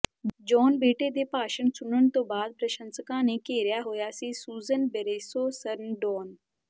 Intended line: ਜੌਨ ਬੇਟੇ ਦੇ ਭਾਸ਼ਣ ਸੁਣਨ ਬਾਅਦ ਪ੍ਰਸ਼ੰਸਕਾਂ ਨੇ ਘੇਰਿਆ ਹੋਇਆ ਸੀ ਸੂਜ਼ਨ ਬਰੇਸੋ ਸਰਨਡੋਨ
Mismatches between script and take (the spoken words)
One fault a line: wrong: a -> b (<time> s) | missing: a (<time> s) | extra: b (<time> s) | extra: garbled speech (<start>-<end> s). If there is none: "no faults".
extra: ਤੋਂ (2.1 s)